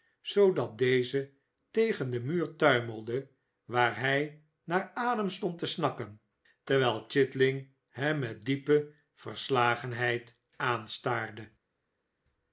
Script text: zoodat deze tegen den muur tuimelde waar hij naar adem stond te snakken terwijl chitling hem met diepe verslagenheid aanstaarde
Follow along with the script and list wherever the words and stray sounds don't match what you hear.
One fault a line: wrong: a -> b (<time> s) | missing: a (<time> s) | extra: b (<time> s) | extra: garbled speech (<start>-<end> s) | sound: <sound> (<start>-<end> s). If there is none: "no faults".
no faults